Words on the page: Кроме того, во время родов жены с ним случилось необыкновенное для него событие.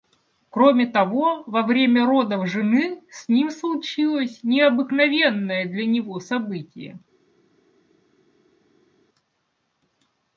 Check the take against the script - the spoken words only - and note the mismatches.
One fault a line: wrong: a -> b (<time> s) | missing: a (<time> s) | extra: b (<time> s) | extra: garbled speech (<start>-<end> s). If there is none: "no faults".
no faults